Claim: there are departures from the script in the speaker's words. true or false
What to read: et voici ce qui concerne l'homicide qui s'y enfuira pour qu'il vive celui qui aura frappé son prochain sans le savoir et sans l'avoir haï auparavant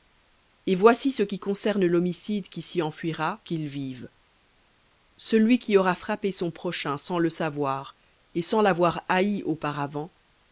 true